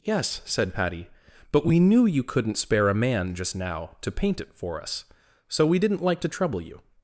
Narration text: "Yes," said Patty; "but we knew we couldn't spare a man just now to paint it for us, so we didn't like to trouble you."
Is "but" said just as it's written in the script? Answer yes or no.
yes